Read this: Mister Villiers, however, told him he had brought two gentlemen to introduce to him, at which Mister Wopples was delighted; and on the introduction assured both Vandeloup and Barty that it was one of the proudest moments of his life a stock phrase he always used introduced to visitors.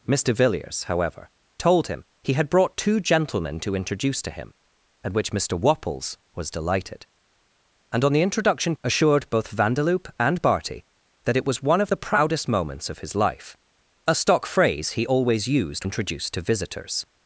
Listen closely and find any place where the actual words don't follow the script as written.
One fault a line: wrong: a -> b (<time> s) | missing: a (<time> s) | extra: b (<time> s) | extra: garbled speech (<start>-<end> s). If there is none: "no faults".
no faults